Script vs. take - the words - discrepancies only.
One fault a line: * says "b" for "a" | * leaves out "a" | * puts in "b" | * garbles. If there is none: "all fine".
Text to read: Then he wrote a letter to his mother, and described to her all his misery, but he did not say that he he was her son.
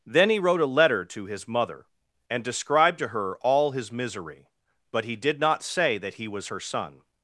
* leaves out "he"